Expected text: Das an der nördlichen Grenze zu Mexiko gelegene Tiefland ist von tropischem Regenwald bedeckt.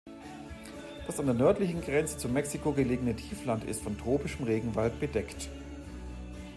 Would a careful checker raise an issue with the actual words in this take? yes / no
no